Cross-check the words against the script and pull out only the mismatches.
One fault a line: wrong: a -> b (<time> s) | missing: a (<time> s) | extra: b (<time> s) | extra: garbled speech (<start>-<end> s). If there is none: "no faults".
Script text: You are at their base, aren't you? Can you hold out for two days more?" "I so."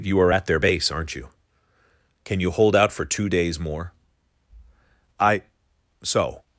no faults